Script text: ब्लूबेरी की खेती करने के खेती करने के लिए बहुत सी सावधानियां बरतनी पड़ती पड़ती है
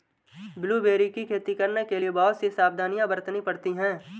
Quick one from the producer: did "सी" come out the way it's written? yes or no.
yes